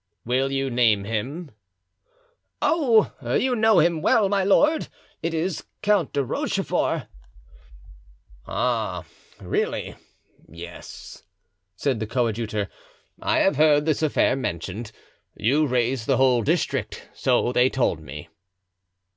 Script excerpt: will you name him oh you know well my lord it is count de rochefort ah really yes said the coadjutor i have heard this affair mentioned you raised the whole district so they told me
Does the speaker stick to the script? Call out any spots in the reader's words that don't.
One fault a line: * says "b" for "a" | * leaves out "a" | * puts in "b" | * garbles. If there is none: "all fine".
* puts in "him"